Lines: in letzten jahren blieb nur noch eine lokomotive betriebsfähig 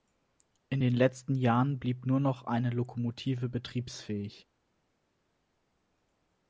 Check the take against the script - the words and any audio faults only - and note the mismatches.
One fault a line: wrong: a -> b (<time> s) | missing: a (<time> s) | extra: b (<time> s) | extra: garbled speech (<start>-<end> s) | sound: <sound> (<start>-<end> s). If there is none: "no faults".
extra: den (0.8 s)